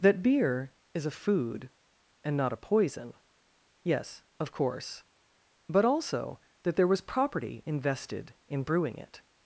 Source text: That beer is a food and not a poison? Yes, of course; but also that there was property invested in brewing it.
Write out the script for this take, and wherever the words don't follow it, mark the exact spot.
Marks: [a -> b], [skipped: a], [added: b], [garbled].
That beer is a food and not a poison? Yes, of course; but also that there was property invested in brewing it.